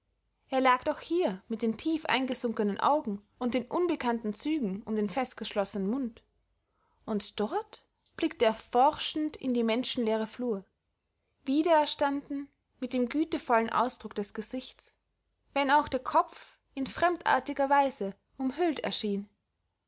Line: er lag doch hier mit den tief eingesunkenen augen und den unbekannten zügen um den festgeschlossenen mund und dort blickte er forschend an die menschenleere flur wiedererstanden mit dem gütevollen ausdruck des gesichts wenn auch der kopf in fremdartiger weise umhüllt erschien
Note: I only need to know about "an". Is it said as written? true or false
false